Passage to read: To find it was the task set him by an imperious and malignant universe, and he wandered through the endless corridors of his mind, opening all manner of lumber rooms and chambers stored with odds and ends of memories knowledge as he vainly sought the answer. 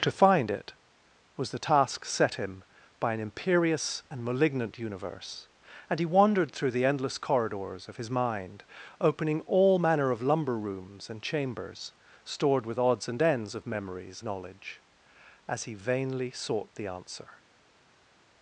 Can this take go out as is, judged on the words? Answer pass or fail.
pass